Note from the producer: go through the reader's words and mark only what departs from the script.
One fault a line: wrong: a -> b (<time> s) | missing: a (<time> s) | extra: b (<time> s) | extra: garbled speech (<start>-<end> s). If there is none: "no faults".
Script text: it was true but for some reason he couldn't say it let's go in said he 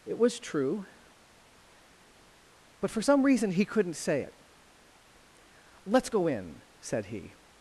no faults